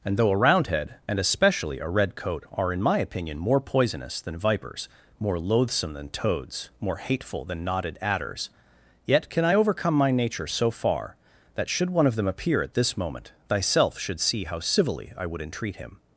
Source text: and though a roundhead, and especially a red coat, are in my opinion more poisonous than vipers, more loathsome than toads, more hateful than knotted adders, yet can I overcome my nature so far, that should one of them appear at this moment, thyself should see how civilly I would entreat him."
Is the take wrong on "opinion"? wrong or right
right